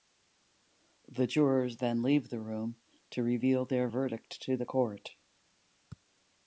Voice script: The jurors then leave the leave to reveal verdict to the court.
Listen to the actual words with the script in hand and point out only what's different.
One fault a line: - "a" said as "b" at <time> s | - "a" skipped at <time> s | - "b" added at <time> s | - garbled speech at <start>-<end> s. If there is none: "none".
- "leave" said as "room" at 2.4 s
- "their" added at 3.6 s